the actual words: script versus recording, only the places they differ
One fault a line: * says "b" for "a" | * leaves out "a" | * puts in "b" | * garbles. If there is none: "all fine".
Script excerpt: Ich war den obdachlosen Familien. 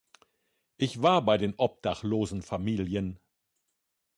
* puts in "bei"